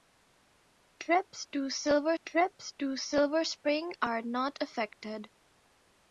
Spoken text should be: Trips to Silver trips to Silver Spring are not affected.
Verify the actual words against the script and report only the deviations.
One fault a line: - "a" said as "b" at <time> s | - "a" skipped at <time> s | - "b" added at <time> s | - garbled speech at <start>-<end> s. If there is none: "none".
none